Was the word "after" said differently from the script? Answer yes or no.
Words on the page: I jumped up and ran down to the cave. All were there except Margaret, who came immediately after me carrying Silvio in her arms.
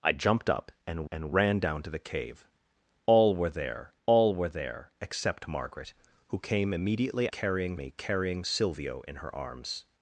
yes